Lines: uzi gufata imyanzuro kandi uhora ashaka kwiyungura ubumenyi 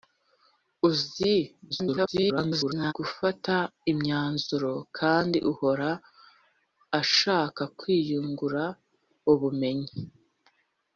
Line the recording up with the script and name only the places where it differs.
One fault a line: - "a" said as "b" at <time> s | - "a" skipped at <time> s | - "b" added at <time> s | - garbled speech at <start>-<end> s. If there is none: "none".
- garbled speech at 1.7-2.9 s